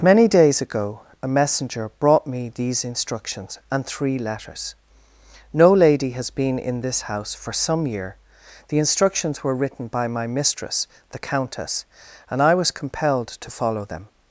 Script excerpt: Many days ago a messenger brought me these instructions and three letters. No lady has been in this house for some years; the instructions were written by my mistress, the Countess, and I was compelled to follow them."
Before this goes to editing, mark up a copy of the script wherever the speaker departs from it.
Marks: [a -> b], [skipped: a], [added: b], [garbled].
Many days ago a messenger brought me these instructions and three letters. No lady has been in this house for some [years; -> year] the instructions were written by my mistress, the Countess, and I was compelled to follow them."